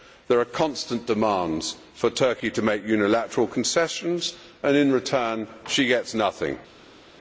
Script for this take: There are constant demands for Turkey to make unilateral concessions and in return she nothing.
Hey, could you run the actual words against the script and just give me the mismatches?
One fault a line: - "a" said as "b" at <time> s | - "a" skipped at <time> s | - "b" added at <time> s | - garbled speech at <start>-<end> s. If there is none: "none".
- "gets" added at 5.8 s